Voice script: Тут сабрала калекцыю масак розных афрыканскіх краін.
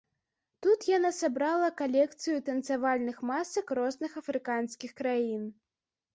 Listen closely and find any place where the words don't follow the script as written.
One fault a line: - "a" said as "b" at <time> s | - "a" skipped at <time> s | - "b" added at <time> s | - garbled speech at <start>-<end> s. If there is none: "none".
- "яна" added at 1.0 s
- "танцавальных" added at 2.5 s